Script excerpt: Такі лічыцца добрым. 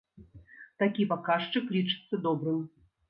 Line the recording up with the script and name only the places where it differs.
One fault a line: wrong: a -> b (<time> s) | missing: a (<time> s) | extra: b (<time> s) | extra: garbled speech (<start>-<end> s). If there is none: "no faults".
extra: паказчык (1.1 s)